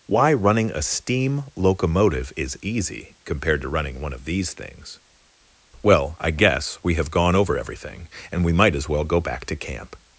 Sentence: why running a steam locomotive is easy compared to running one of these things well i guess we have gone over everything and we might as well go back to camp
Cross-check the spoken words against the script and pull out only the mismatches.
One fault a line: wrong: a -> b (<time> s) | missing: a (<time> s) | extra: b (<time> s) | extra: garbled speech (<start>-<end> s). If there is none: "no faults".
no faults